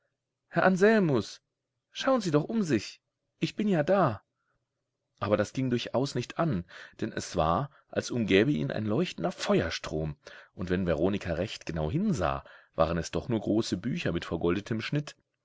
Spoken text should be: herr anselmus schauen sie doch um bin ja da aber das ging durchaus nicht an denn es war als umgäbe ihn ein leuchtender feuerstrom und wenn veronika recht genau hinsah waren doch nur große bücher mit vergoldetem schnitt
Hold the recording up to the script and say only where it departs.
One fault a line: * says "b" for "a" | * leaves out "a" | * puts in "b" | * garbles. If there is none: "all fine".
* puts in "sich ich"
* puts in "es"